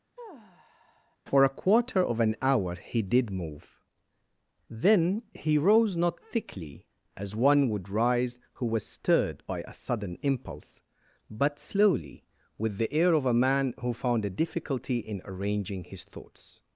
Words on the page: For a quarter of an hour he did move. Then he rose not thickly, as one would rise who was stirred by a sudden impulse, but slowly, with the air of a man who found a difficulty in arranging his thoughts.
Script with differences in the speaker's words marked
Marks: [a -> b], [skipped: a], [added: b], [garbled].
For a quarter of an hour he did move. Then he rose not thickly, as one would rise who was stirred by a sudden impulse, but slowly, with the air of a man who found a difficulty in arranging his thoughts.